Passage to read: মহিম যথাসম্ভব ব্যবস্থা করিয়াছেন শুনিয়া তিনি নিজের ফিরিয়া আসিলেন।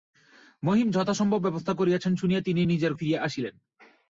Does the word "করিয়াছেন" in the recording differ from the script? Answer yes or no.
no